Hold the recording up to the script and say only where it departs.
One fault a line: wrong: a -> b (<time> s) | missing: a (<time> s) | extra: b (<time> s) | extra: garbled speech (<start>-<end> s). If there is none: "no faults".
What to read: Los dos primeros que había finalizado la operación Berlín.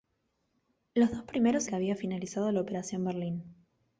no faults